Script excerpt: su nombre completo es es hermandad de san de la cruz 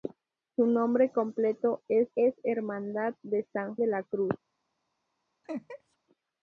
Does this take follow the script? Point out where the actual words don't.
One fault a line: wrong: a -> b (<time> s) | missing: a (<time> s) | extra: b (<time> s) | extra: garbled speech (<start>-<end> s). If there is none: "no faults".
no faults